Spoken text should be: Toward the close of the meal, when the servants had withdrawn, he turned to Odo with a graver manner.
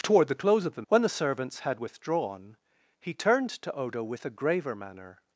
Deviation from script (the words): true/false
true